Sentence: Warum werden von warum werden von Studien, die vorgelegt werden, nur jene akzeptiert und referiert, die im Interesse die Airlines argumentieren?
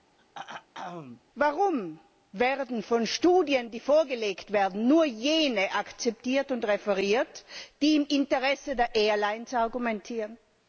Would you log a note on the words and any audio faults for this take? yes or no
yes